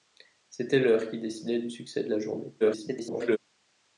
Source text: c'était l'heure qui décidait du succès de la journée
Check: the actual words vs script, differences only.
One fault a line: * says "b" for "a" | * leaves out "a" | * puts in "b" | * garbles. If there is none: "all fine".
* garbles